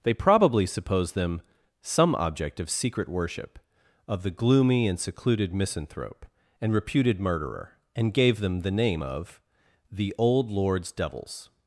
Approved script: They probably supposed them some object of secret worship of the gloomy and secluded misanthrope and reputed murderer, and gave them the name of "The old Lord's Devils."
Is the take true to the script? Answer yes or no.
yes